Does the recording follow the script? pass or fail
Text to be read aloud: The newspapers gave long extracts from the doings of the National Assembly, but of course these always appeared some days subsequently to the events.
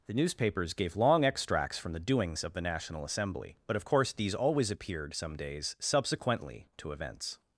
fail